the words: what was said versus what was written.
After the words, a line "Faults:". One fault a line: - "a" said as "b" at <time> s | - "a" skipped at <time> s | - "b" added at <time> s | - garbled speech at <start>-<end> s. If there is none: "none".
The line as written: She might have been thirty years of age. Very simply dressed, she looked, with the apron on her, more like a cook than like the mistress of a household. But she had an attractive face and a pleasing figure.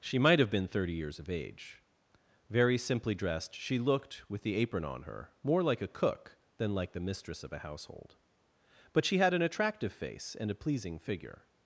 She might have been thirty years of age. Very simply dressed, she looked, with the apron on her, more like a cook than like the mistress of a household. But she had an attractive face and a pleasing figure.
Faults:
none